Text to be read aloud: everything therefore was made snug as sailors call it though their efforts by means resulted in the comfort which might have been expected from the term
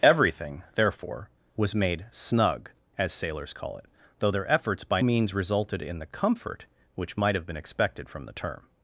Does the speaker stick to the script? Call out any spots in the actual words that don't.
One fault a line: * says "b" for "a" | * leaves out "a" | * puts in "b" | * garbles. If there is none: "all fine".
all fine